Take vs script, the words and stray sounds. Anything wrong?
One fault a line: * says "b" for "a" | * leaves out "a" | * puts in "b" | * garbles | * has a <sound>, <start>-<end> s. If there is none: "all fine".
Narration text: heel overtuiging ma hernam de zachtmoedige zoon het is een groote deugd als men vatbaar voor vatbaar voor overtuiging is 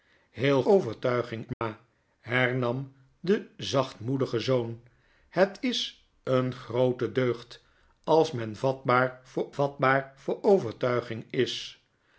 * has a dropout, 1.5-1.6 s